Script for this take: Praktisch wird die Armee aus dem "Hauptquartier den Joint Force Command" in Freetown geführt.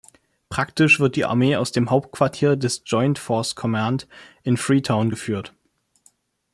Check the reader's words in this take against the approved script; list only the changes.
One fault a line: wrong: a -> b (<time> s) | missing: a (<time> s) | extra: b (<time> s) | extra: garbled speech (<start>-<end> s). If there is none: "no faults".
wrong: den -> des (2.5 s)